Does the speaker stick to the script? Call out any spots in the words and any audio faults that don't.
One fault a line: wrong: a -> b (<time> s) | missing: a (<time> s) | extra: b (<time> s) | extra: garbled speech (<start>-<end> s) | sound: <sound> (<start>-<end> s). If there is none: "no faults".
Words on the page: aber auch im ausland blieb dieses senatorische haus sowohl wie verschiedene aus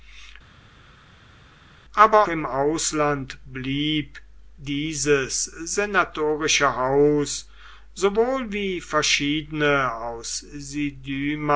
missing: auch (2.3 s)